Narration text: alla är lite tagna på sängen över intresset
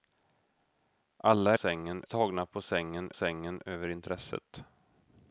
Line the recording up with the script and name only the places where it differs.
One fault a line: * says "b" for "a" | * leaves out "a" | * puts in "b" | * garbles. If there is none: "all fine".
* says "sängen" for "lite"
* puts in "sängen"